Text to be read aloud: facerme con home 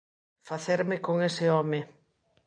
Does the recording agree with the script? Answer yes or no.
no